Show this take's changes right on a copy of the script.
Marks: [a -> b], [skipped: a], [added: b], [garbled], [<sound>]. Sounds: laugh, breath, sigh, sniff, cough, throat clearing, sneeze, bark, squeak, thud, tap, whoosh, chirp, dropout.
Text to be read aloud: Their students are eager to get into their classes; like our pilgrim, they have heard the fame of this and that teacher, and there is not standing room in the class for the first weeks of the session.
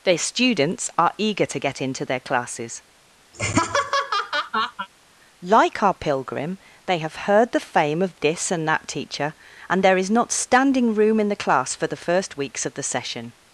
Their students are eager to get into their classes; [laugh] like our pilgrim, they have heard the fame of this and that teacher, and there is not standing room in the class for the first weeks of the session.